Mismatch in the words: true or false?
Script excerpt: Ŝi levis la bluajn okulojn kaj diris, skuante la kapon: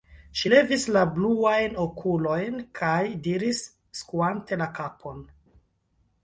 false